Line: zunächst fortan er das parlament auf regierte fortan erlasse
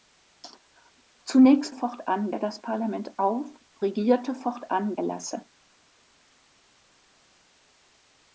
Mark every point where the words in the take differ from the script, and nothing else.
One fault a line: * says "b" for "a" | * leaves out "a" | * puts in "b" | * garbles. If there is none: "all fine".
all fine